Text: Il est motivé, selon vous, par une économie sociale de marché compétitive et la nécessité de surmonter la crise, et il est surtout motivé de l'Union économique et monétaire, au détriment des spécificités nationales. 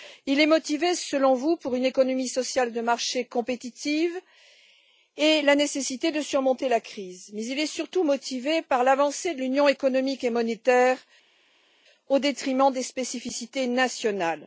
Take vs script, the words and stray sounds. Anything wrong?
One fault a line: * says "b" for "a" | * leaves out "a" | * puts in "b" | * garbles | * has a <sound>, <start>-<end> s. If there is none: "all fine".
* says "mais" for "et"
* puts in "par l'avancée"